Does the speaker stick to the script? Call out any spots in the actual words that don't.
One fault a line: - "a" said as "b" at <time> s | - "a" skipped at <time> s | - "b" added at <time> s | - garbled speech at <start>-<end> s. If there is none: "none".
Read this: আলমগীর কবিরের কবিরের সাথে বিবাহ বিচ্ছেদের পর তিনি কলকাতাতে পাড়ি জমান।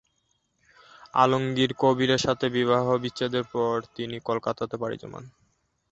- "কবিরের" skipped at 2.2 s